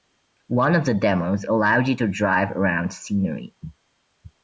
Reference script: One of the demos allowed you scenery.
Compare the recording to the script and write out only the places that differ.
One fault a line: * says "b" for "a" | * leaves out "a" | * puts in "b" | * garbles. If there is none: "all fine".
* puts in "to drive around"